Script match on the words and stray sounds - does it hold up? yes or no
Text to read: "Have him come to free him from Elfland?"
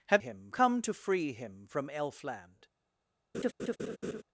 no